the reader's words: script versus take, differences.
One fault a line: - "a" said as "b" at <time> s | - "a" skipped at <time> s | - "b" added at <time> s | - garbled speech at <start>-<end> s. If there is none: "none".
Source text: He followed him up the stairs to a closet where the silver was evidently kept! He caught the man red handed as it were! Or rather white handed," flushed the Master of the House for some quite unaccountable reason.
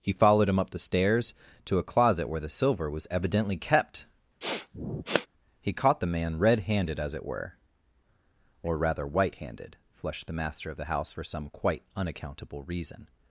none